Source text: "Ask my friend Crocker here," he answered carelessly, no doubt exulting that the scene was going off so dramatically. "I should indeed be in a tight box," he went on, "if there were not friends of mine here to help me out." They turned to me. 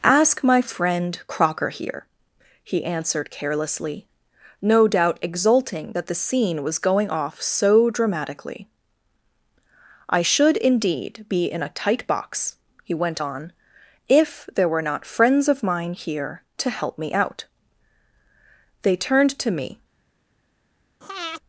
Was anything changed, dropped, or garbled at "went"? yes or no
no